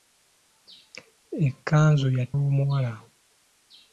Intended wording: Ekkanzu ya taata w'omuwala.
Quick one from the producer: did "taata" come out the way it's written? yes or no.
no